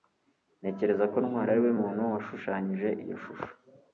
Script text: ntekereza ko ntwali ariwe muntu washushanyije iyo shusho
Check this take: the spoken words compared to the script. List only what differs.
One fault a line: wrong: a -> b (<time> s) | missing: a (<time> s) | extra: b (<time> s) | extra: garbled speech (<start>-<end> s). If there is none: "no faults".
no faults